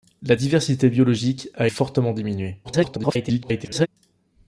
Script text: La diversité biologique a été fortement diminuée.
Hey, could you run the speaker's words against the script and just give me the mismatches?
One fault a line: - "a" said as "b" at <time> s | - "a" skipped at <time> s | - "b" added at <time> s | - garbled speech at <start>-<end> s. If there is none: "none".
- "été" skipped at 1.7 s
- garbled speech at 2.6-3.9 s